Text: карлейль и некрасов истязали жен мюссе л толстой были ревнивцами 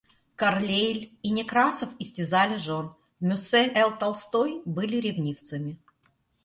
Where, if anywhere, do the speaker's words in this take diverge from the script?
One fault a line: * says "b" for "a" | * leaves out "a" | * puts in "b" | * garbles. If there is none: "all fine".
all fine